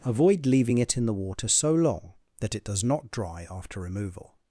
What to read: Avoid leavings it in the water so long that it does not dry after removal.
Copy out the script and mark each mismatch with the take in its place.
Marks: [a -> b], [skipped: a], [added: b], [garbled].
Avoid [leavings -> leaving] it in the water so long that it does not dry after removal.